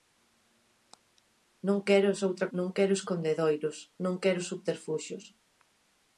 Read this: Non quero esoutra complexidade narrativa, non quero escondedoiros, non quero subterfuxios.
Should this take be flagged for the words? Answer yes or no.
yes